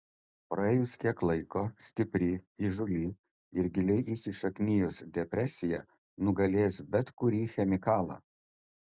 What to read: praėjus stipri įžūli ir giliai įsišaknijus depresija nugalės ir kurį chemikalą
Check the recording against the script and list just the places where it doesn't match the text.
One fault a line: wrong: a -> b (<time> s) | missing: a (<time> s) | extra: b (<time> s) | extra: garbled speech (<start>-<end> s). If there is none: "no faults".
extra: kiek laiko (1.0 s)
wrong: ir -> bet (7.0 s)